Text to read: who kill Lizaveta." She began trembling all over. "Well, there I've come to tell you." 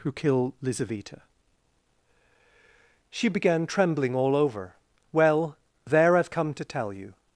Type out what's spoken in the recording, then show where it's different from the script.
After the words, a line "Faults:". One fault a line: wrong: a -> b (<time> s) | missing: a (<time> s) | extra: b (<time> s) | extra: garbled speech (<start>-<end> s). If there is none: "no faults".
who kill Lizaveta." She began trembling all over. "Well, there I've come to tell you."
Faults:
no faults